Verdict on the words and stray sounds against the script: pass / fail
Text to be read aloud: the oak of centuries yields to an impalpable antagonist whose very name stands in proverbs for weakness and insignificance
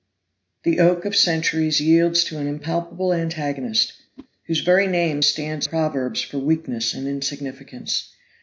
fail